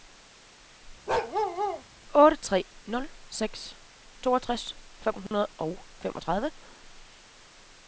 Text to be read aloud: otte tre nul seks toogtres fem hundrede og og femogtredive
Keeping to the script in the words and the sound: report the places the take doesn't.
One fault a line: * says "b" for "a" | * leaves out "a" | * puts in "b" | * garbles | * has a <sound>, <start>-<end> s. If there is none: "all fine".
* has a bark, 1.1-1.8 s
* has a dropout, 5.3-5.3 s
* leaves out "og"